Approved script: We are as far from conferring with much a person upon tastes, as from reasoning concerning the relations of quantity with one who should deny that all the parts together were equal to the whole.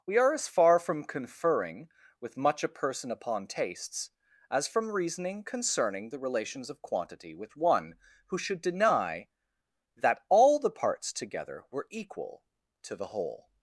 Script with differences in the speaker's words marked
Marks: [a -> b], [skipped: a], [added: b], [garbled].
We are as far from conferring with much a person upon tastes, as from reasoning concerning the relations of quantity with one who should deny that all the parts together were equal to the whole.